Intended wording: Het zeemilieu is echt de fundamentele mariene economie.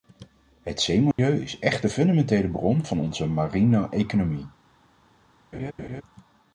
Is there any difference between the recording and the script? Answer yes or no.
yes